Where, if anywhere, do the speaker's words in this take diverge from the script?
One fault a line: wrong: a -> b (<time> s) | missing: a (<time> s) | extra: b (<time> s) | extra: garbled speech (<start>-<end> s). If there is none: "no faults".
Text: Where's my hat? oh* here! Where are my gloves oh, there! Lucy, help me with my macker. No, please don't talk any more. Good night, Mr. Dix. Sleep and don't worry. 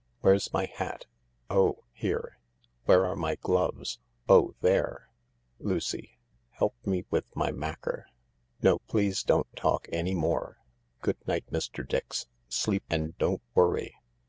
no faults